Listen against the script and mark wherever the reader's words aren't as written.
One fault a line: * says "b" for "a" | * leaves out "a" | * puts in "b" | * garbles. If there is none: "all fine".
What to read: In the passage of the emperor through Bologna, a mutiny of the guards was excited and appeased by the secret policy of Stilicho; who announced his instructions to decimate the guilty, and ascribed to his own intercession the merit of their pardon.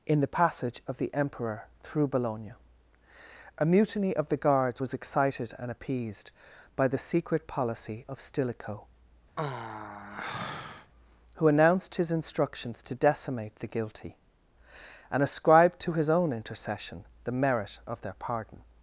all fine